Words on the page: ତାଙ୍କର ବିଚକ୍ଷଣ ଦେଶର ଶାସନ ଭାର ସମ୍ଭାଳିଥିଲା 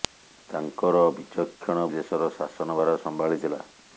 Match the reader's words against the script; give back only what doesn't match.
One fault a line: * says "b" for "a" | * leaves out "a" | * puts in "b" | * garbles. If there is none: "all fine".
all fine